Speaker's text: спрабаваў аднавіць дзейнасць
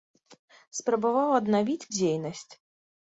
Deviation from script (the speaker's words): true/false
false